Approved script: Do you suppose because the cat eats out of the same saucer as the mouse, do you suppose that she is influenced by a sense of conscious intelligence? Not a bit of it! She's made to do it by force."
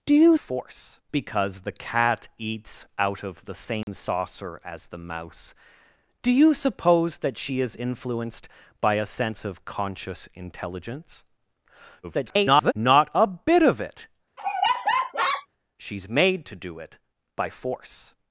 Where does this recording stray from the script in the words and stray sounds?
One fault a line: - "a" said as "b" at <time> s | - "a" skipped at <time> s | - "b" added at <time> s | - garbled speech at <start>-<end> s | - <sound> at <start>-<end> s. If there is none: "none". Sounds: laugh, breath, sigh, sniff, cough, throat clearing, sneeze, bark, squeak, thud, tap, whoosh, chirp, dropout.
- "suppose" said as "force" at 0.4 s
- dropout at 3.8-3.9 s
- garbled speech at 12.0-12.7 s
- laugh at 14.4-15.5 s